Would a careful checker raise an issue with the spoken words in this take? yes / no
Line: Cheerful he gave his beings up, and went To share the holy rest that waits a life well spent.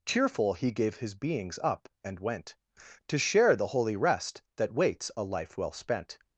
no